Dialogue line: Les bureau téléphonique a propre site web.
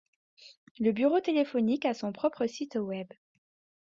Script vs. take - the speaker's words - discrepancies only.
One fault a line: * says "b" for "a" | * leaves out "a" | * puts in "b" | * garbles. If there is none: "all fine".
* says "Le" for "Les"
* puts in "son"